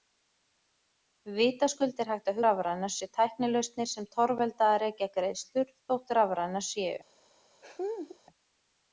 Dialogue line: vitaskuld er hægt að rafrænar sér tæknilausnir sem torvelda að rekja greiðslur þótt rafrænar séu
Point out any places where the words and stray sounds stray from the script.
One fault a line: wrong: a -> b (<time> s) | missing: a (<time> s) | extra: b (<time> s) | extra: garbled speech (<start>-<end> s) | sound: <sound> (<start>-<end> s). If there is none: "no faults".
sound: laugh (7.6-8.2 s)